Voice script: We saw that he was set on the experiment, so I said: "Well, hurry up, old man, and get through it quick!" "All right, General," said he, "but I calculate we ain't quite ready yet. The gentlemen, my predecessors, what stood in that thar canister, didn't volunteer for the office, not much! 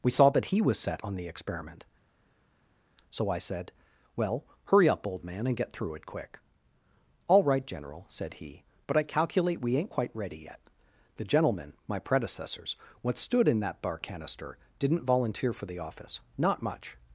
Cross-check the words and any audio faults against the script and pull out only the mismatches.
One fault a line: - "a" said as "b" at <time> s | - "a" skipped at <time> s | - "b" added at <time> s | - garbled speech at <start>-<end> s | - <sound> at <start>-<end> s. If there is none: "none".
- "thar" said as "bar" at 13.8 s